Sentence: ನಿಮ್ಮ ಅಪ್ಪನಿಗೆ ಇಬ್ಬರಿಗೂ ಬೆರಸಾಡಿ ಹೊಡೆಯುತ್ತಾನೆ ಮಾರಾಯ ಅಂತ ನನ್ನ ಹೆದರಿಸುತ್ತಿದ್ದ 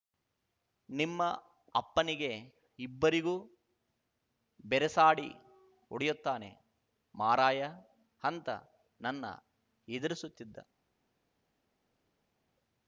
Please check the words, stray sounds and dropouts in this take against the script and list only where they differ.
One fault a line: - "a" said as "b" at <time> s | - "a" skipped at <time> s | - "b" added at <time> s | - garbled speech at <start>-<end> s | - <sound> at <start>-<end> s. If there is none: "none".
none